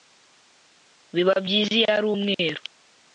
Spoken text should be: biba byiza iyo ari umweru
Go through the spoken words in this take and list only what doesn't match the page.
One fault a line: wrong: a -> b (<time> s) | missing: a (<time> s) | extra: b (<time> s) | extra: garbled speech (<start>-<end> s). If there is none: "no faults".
no faults